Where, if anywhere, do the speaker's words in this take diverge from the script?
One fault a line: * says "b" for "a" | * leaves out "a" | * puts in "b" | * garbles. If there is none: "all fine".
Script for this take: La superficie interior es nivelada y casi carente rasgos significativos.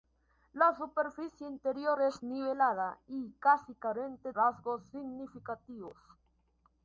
all fine